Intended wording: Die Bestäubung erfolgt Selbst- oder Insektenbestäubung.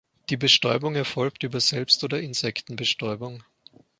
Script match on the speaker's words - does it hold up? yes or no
no